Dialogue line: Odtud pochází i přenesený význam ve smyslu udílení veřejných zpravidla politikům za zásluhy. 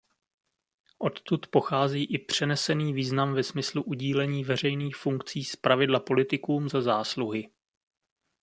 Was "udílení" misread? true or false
false